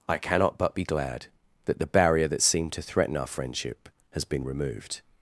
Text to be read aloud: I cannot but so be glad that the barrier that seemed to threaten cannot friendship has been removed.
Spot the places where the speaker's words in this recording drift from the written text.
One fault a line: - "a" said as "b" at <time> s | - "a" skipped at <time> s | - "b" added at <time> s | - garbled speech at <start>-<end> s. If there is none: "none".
- "so" skipped at 0.8 s
- "cannot" said as "our" at 3.2 s